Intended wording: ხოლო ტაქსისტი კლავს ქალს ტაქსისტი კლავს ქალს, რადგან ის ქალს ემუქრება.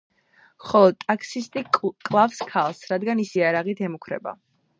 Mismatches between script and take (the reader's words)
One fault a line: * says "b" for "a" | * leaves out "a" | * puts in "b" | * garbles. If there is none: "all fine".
* leaves out "ტაქსისტი კლავს ქალს"
* says "იარაღით" for "ქალს"